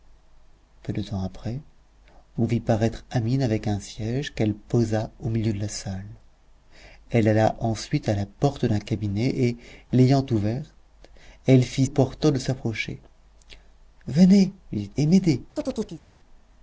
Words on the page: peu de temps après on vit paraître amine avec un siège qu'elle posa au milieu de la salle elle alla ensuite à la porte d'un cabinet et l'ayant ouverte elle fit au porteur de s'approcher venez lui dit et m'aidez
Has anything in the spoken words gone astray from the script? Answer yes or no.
no